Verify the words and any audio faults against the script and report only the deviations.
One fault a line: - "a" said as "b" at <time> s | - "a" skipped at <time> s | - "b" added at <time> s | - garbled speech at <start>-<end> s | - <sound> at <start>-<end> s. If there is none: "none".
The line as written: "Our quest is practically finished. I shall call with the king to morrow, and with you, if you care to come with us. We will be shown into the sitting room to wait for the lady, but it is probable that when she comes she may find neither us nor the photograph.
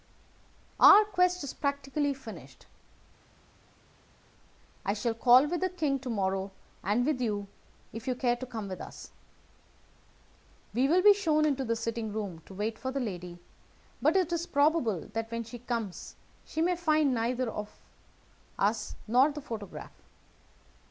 none